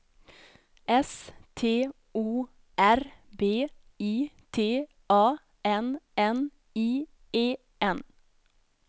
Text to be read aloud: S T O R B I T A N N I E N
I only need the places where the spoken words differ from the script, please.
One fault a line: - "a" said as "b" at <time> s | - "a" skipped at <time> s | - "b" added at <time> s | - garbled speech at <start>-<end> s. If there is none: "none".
none